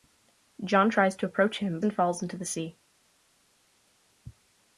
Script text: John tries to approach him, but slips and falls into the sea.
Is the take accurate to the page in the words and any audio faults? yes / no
no